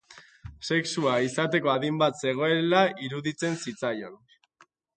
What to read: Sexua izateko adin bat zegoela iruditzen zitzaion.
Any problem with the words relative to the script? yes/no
no